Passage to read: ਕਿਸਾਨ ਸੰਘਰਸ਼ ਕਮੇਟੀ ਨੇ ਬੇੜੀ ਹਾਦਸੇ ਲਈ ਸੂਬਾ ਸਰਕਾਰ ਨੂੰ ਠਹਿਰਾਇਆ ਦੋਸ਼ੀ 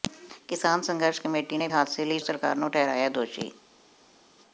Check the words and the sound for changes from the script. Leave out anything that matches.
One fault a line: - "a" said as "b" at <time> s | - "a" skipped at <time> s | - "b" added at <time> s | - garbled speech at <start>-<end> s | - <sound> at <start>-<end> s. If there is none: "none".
- "ਬੇੜੀ" skipped at 1.7 s
- "ਸੂਬਾ" skipped at 2.2 s